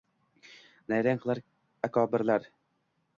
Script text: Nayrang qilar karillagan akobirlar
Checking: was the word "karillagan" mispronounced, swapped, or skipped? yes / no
yes